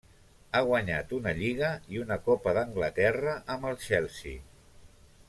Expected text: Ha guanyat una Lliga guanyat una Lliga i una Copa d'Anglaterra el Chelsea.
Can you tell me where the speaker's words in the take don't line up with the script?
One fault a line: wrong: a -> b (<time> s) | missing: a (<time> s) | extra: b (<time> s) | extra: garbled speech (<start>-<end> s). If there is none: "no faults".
missing: guanyat una Lliga (1.7 s)
extra: amb (3.6 s)